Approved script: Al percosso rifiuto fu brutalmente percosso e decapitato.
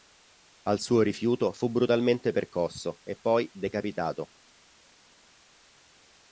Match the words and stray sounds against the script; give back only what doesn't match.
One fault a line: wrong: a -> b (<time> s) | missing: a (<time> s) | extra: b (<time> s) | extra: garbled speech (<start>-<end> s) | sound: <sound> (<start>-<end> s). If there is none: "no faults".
wrong: percosso -> suo (0.8 s)
extra: poi (3.2 s)